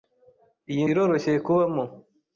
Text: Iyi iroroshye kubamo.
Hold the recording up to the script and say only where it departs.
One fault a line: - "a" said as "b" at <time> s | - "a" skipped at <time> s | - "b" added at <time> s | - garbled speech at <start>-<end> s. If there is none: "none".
none